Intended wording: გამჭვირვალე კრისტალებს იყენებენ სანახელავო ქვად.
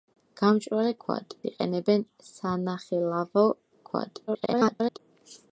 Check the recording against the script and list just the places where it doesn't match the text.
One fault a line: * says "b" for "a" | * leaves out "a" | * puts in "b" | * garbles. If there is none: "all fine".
* says "ქვად" for "კრისტალებს"
* garbles